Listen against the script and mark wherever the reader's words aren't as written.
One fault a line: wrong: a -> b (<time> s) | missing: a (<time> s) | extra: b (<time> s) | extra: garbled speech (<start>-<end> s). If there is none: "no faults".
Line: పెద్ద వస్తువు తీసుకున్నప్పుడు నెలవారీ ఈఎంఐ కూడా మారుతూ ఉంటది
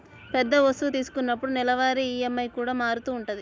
no faults